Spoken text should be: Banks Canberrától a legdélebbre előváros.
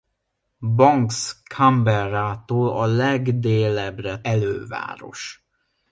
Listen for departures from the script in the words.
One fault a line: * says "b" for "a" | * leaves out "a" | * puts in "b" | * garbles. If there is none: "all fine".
all fine